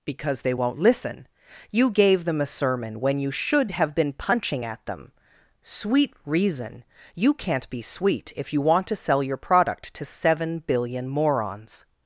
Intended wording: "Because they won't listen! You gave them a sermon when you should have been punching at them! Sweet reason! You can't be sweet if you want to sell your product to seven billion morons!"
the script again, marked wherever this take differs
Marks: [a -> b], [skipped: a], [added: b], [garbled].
"Because they won't listen! You gave them a sermon when you should have been punching at them! Sweet reason! You can't be sweet if you want to sell your product to seven billion morons!"